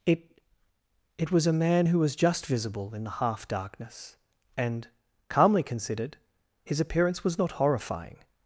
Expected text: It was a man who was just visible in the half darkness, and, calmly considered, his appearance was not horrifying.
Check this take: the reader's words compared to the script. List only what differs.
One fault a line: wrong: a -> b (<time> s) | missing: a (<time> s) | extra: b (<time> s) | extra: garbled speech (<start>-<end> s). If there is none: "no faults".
extra: it (1.2 s)